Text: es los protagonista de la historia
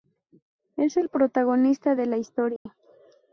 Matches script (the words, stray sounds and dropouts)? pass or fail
fail